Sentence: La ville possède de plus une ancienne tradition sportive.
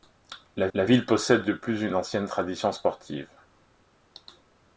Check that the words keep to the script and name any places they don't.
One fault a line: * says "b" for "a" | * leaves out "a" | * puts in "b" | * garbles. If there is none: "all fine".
* puts in "la"